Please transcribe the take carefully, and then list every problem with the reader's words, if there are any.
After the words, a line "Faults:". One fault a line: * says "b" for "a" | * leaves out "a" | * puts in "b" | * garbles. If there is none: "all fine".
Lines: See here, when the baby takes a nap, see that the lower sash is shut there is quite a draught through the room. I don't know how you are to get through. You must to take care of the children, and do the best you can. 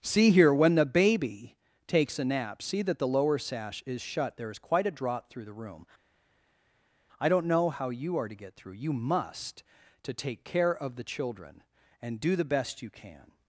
See here, when the baby takes a nap, see that the lower sash is shut there is quite a draught through the room. I don't know how you are to get through. You must to take care of the children, and do the best you can.
Faults:
all fine